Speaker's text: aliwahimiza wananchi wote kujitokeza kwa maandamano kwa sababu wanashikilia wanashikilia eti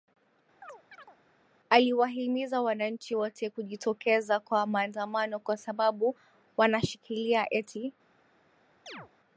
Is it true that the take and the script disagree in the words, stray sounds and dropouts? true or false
true